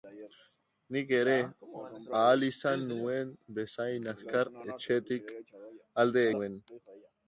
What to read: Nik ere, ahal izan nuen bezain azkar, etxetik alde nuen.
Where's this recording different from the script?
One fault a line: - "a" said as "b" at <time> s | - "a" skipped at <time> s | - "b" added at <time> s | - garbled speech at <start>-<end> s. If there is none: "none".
none